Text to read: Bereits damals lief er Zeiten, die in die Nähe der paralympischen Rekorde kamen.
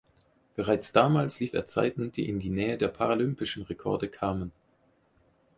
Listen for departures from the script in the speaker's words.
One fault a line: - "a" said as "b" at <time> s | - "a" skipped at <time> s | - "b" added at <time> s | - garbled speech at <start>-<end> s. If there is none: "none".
none